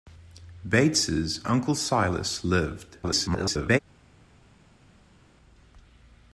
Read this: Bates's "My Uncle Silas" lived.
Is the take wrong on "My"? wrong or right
wrong